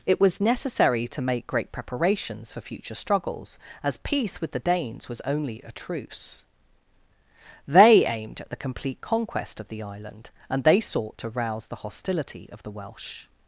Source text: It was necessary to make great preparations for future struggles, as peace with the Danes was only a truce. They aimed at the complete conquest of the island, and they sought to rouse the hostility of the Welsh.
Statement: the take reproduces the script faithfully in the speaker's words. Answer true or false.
true